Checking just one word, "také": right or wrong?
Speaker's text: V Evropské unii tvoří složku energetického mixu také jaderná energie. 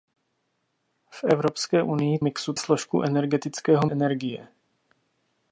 wrong